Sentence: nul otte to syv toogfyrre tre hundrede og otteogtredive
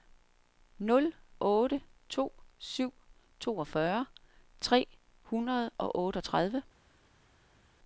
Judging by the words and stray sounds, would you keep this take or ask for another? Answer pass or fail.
pass